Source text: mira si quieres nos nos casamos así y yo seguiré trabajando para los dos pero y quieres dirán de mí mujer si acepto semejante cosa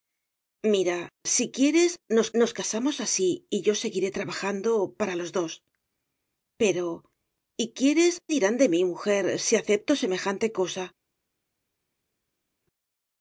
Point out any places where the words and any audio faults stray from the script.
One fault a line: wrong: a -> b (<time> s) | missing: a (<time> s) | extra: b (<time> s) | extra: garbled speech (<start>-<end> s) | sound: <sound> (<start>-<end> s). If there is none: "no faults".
no faults